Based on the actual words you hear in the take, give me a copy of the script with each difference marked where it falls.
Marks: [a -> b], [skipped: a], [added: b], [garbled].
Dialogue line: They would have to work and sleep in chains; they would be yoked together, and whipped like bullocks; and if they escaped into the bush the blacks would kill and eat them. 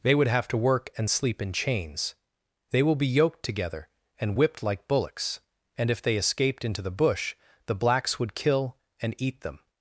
They would have to work and sleep in chains; they [would -> will] be yoked together, and whipped like bullocks; and if they escaped into the bush the blacks would kill and eat them.